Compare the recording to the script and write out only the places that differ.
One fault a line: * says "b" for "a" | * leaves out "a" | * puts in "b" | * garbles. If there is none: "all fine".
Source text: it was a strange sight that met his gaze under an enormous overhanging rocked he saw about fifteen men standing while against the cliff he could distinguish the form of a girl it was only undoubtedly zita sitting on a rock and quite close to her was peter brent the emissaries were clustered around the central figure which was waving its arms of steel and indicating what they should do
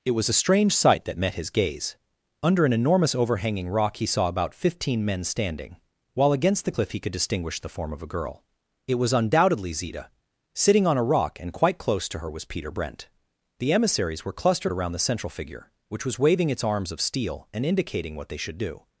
* says "rock" for "rocked"
* leaves out "only"